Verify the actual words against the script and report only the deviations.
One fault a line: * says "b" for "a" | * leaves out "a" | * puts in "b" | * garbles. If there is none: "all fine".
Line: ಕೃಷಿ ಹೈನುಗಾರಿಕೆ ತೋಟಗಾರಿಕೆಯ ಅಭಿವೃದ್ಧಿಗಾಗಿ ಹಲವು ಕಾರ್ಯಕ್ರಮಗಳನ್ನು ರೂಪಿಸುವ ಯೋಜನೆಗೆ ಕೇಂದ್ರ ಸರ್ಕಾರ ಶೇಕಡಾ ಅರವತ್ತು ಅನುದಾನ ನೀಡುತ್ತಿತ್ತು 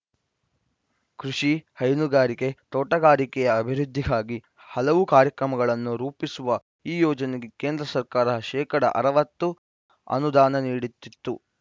* puts in "ಈ"